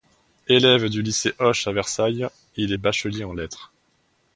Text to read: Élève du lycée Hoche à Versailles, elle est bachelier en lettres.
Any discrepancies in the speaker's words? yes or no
yes